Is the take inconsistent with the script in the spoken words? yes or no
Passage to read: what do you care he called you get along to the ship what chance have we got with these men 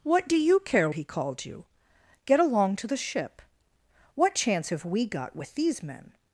no